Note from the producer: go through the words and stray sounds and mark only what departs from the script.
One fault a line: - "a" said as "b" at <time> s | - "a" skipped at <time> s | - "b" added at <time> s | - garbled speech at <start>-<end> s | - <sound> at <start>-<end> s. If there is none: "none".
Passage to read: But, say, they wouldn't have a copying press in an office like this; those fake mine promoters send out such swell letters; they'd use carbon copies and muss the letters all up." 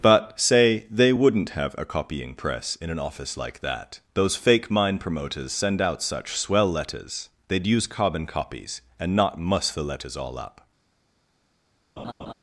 - "this" said as "that" at 3.6 s
- "not" added at 9.1 s
- laugh at 12.0-12.3 s